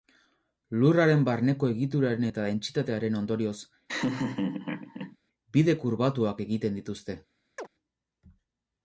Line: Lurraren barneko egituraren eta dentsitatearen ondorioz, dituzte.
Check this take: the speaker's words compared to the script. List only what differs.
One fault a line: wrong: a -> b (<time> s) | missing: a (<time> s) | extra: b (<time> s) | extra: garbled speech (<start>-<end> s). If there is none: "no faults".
extra: bide kurbatuak egiten (5.6 s)